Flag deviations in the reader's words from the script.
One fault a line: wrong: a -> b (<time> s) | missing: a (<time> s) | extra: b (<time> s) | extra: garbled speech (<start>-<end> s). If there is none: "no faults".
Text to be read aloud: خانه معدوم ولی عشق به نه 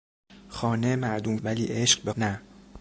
no faults